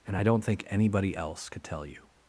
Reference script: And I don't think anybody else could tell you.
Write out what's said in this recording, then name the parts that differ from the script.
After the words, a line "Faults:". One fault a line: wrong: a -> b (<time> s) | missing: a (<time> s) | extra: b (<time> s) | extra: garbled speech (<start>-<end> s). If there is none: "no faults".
And I don't think anybody else could tell you.
Faults:
no faults